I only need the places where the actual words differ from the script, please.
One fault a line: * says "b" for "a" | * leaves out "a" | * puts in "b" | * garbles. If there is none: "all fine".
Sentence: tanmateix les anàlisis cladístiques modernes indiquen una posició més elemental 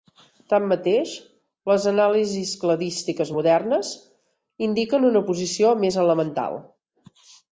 all fine